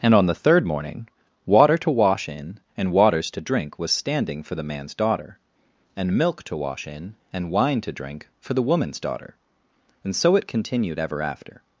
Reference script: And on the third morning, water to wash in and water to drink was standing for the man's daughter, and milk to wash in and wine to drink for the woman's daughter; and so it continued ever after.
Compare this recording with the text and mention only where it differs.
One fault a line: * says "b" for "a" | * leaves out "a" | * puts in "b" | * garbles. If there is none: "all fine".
* says "waters" for "water"